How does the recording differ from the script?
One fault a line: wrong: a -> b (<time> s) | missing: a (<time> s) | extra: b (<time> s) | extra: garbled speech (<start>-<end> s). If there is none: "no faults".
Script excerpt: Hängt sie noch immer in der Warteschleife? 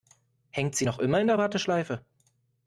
no faults